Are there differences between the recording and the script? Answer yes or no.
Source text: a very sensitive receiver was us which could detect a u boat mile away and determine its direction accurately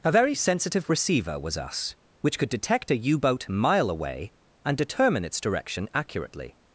no